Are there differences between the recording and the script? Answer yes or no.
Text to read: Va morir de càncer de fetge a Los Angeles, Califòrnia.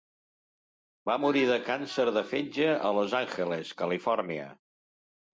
no